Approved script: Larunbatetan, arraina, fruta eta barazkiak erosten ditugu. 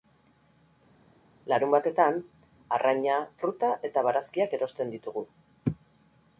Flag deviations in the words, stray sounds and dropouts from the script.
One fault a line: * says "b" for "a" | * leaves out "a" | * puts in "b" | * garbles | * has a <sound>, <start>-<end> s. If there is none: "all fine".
all fine